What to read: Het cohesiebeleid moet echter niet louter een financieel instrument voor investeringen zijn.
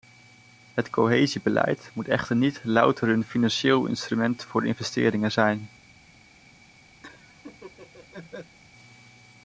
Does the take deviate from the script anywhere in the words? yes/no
no